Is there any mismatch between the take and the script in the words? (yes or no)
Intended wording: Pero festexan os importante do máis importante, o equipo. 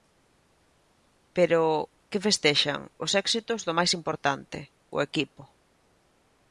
yes